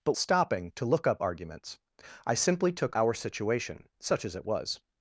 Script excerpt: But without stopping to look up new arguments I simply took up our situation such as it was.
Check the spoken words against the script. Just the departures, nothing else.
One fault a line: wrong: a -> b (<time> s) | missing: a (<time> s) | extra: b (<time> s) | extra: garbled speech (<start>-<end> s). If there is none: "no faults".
missing: without (0.1 s)
missing: new (1.2 s)
missing: up (3.0 s)